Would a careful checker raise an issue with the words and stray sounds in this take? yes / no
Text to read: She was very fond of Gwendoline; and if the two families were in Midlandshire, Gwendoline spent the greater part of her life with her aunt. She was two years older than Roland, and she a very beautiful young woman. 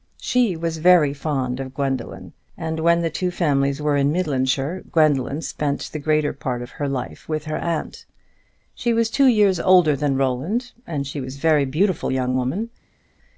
yes